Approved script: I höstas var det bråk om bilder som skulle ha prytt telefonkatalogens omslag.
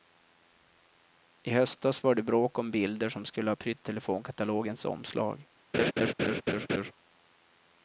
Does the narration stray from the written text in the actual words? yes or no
no